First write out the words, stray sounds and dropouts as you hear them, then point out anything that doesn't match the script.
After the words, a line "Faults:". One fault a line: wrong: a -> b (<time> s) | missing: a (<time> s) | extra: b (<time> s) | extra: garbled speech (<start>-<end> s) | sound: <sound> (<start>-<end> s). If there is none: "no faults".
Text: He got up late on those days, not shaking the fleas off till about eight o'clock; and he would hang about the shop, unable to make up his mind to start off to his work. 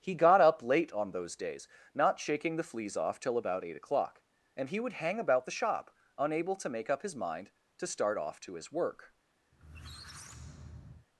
He got up late on those days, not shaking the fleas off till about eight o'clock; and he would hang about the shop, unable to make up his mind to start off to his work.
Faults:
sound: squeak (9.5-11.1 s)